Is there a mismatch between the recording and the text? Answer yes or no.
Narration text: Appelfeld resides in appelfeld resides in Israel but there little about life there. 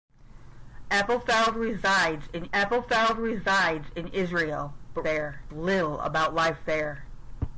no